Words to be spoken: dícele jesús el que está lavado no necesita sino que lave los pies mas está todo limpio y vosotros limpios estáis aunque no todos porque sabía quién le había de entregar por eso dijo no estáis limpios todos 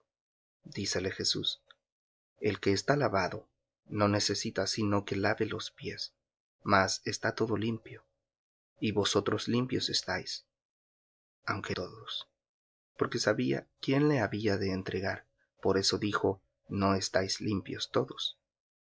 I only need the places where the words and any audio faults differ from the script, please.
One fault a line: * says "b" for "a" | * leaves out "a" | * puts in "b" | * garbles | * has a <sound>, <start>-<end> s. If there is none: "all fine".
* leaves out "no"